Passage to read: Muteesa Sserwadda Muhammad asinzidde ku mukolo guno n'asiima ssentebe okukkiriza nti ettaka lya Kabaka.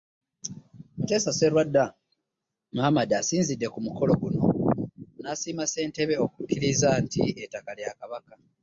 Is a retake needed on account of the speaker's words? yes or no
no